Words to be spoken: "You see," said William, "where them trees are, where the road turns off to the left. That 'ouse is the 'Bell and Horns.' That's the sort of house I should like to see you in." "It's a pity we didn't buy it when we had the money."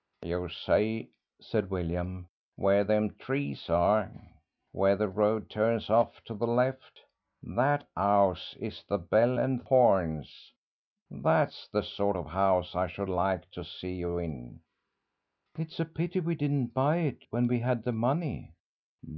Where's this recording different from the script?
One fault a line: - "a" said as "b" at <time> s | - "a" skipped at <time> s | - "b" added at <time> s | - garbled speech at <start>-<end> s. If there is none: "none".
none